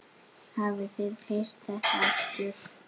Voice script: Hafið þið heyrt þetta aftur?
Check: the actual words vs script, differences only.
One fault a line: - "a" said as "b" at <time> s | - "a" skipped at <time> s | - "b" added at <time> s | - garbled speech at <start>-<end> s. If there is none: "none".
none